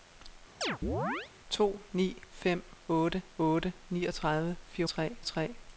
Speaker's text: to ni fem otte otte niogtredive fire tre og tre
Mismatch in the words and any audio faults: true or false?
true